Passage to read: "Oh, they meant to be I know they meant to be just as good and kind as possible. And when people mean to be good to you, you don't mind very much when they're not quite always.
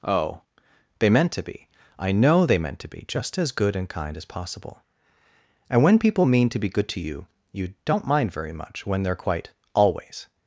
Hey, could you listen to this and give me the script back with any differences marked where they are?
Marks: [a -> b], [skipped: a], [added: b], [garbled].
"Oh, they meant to be I know they meant to be just as good and kind as possible. And when people mean to be good to you, you don't mind very much when they're [skipped: not] quite always.